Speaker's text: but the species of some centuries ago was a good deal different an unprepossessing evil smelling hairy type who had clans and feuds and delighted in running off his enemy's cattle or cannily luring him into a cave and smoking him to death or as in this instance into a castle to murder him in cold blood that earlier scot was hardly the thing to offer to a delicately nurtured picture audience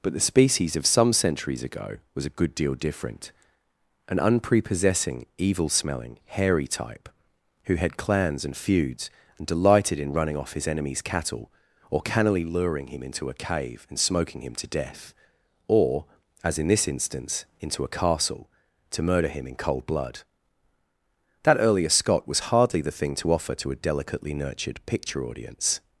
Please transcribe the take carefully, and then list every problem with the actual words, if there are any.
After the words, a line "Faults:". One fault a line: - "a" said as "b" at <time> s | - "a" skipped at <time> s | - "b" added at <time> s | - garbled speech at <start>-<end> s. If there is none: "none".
but the species of some centuries ago was a good deal different an unprepossessing evil smelling hairy type who had clans and feuds and delighted in running off his enemy's cattle or cannily luring him into a cave and smoking him to death or as in this instance into a castle to murder him in cold blood that earlier scot was hardly the thing to offer to a delicately nurtured picture audience
Faults:
none